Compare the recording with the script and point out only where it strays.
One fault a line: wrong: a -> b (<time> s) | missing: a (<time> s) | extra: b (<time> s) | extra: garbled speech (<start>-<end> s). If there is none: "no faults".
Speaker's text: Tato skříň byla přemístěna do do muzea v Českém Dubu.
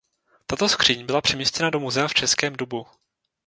missing: do (1.8 s)